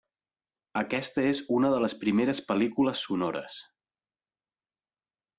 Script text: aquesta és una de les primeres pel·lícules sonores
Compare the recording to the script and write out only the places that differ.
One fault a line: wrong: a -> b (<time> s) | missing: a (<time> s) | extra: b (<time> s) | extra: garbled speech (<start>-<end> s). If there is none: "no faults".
no faults